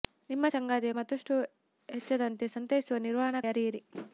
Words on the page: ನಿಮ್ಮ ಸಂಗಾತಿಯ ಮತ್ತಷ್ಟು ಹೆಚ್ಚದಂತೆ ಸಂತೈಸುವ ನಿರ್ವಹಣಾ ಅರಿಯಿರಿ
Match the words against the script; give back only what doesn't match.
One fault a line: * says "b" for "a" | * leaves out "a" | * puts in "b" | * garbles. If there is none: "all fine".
all fine